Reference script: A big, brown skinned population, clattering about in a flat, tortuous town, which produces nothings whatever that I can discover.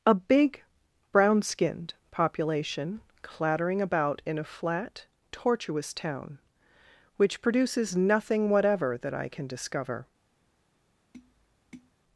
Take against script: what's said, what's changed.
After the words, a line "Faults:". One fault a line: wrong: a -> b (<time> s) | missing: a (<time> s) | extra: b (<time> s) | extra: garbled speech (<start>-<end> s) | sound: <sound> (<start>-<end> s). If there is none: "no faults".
A big, brown skinned population, clattering about in a flat, tortuous town, which produces nothing whatever that I can discover.
Faults:
wrong: nothings -> nothing (8.0 s)
sound: tap (11.1-11.9 s)